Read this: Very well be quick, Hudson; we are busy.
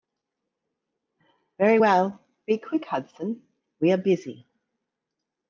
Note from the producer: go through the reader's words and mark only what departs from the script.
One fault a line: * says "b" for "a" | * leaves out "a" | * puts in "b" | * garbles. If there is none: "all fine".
all fine